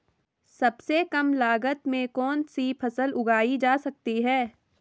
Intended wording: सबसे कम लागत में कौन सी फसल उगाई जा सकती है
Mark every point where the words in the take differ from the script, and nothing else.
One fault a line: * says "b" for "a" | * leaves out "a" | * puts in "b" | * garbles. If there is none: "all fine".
all fine